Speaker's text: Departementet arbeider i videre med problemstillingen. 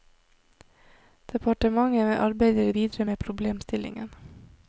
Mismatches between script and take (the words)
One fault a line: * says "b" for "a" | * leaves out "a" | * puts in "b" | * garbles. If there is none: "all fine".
all fine